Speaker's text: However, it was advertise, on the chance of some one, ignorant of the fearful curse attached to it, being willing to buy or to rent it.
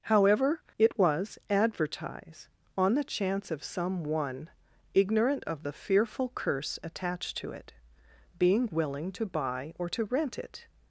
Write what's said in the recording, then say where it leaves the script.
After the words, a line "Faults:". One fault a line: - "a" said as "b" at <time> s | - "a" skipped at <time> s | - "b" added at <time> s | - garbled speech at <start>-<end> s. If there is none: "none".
However, it was advertise, on the chance of some one, ignorant of the fearful curse attached to it, being willing to buy or to rent it.
Faults:
none